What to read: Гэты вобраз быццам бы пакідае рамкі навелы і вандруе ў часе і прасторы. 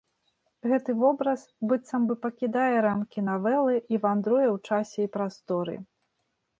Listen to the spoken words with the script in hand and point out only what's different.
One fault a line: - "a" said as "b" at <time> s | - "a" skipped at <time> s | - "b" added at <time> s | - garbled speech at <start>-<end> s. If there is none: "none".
none